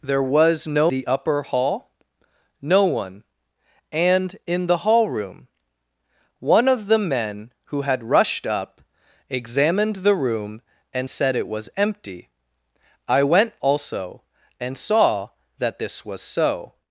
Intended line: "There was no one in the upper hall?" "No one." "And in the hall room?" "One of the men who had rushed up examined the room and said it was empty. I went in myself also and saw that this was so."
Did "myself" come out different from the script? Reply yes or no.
yes